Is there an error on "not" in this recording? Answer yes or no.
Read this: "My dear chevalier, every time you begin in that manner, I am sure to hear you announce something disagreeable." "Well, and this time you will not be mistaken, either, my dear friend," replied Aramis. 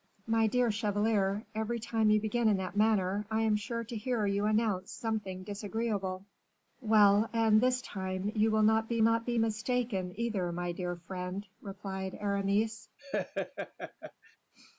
no